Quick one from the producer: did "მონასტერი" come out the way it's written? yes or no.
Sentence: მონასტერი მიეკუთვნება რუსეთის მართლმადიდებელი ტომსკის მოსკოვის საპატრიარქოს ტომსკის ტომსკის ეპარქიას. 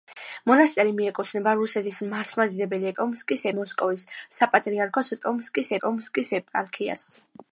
yes